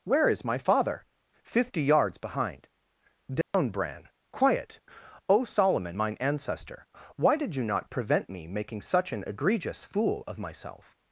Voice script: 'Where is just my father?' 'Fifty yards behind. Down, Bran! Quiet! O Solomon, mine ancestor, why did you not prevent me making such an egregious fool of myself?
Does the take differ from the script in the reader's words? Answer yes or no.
yes